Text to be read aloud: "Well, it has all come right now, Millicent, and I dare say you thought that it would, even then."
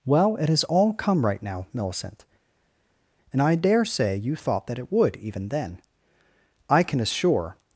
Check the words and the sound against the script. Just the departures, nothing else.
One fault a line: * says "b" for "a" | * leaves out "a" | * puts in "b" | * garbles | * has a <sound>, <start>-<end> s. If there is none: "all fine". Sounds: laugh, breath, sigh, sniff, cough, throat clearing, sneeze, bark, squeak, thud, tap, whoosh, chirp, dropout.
* puts in "I can assure"